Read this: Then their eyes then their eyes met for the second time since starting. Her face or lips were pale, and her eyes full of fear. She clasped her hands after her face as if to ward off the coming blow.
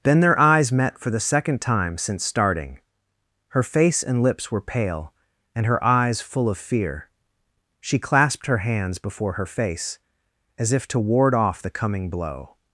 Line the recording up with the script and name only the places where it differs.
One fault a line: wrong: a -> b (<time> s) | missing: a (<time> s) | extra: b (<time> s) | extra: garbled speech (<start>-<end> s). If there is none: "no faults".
missing: then their eyes (0.7 s)
wrong: or -> and (4.0 s)
wrong: after -> before (9.0 s)